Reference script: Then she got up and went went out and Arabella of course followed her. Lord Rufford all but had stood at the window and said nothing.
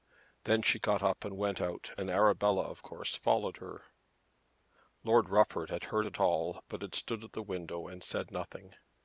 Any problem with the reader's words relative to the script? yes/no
yes